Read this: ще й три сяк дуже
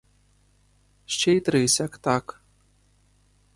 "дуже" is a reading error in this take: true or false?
true